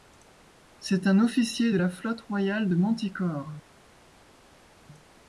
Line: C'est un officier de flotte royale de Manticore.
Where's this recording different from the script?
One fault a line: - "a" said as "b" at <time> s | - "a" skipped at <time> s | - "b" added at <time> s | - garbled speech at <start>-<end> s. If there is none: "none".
- "la" added at 1.7 s